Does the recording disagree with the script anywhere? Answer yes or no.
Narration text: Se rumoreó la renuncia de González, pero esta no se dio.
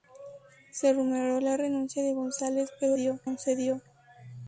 yes